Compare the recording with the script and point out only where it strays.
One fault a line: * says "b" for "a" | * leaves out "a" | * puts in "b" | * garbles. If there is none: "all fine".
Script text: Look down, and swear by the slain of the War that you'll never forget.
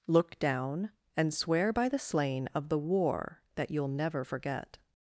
all fine